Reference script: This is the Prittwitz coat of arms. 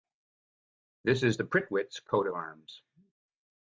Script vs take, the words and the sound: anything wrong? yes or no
yes